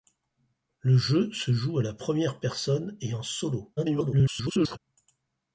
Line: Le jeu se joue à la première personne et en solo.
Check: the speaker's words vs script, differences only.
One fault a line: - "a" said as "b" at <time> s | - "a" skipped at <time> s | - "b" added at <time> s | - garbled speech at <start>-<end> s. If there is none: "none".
- garbled speech at 3.8-4.8 s